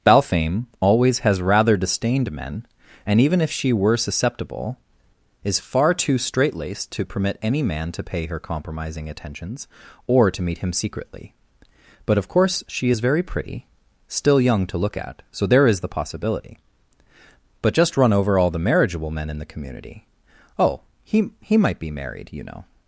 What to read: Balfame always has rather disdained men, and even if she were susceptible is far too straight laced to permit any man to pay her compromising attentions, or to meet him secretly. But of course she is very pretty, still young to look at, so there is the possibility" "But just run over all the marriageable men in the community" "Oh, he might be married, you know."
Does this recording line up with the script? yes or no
no